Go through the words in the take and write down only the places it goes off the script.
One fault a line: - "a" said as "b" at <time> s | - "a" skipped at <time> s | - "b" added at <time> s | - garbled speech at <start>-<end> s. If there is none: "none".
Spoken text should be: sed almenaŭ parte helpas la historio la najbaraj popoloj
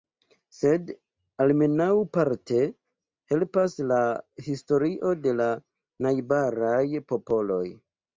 - "de" added at 5.3 s